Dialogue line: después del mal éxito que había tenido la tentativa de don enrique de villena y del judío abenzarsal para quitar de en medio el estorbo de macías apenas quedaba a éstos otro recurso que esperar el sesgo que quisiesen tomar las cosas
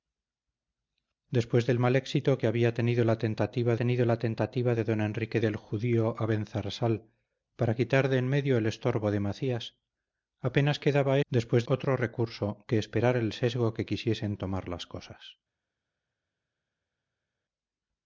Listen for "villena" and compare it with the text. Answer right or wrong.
wrong